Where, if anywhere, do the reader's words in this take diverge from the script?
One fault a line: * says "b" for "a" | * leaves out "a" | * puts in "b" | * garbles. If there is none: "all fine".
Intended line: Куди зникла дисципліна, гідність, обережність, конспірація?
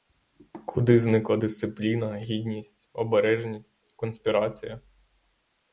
all fine